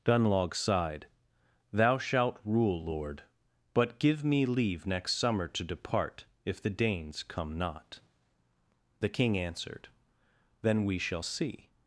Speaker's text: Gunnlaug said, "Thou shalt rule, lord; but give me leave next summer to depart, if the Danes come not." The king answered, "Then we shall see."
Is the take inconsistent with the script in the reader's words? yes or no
yes